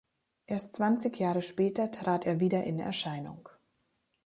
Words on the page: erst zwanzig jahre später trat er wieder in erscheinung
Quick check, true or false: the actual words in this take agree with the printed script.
true